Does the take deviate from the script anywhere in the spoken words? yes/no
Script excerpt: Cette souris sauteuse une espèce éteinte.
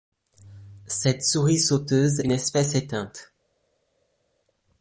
no